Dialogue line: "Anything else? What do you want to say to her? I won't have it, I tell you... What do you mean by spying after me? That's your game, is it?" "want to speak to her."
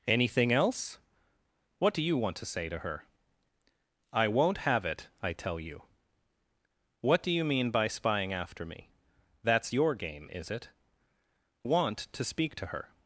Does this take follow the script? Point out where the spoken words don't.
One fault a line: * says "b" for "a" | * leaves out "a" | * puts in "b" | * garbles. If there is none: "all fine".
all fine